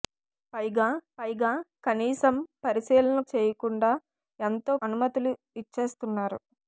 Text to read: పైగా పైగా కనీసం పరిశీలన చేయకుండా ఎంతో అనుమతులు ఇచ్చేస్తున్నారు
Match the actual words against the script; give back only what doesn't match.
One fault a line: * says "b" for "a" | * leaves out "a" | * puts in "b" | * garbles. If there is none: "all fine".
all fine